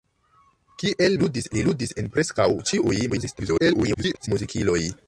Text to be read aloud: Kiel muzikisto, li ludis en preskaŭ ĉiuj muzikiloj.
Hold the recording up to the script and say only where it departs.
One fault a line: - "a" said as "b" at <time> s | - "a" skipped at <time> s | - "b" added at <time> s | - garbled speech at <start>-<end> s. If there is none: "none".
- "muzikisto" said as "ludis" at 1.2 s
- garbled speech at 3.1-4.3 s